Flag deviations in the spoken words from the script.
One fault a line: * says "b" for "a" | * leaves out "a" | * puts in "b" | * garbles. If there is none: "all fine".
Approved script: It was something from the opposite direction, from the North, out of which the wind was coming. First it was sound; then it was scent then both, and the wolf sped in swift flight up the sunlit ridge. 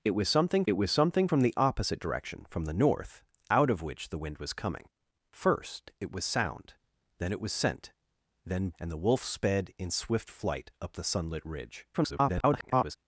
* puts in "it was something"
* leaves out "both"
* garbles